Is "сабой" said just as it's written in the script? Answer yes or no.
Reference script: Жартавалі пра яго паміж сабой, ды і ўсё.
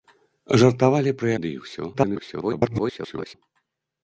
no